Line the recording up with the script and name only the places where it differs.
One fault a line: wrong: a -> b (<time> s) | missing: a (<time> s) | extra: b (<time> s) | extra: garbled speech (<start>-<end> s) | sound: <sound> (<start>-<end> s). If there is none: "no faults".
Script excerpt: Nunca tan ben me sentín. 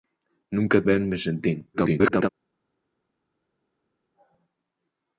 missing: tan (0.8 s)
extra: garbled speech (1.7-2.3 s)